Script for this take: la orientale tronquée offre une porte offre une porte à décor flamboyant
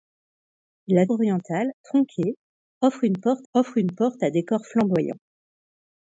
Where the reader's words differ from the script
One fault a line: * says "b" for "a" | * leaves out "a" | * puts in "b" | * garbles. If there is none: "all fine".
all fine